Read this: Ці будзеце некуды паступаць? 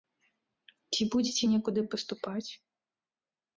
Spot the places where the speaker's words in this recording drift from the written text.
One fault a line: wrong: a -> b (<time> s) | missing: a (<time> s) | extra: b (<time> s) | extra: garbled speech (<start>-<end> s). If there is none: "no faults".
no faults